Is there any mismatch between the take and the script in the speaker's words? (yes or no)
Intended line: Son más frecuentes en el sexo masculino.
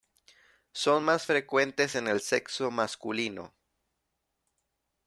no